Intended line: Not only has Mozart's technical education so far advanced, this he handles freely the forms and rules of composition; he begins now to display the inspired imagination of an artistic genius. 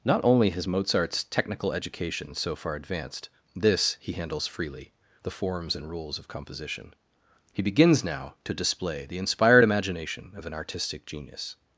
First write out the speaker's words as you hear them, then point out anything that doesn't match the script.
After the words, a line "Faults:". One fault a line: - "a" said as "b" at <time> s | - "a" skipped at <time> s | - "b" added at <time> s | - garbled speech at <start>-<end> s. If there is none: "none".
Not only has Mozart's technical education so far advanced, this he handles freely the forms and rules of composition; he begins now to display the inspired imagination of an artistic genius.
Faults:
none